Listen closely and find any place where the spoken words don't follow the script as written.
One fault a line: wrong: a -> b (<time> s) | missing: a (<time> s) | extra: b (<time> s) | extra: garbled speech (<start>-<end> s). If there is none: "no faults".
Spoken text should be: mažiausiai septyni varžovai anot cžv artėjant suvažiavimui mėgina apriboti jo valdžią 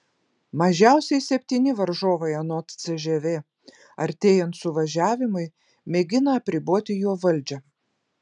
no faults